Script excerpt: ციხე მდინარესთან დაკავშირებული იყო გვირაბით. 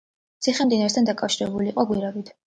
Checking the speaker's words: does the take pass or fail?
pass